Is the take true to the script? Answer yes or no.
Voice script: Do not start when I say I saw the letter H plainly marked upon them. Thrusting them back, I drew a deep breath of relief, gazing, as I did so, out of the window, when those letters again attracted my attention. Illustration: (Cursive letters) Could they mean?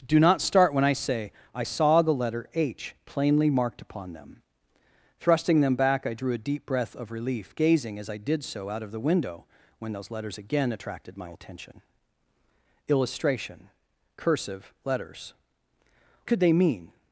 yes